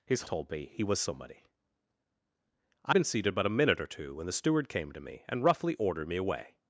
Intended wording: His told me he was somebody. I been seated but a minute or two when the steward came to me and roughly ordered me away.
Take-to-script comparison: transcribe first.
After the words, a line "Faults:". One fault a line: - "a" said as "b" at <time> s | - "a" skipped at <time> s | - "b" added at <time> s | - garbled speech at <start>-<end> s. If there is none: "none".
His told me he was somebody. I been seated but a minute or two when the steward came to me and roughly ordered me away.
Faults:
none